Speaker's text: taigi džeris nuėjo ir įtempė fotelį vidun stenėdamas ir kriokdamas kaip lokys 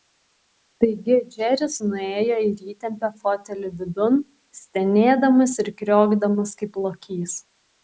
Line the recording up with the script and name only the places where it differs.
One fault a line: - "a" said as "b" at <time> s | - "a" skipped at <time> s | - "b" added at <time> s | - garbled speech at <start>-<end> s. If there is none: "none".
none